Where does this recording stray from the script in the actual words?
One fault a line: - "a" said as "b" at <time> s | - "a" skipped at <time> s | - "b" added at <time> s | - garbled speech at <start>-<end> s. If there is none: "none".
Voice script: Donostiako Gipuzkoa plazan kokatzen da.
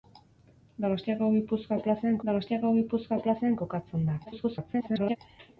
- "donostiako Gipuzkoa plazan" added at 2.3 s
- garbled speech at 4.2-5.2 s